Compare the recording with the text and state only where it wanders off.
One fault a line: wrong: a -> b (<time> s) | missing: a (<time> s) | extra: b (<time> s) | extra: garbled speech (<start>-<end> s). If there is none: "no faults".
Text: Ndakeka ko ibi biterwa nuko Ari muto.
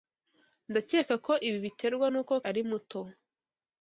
no faults